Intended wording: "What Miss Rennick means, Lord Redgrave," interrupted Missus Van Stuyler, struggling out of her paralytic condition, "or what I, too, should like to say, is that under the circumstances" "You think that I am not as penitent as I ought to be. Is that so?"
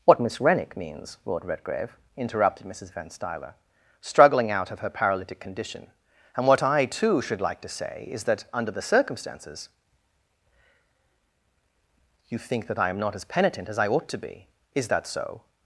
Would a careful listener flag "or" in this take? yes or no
yes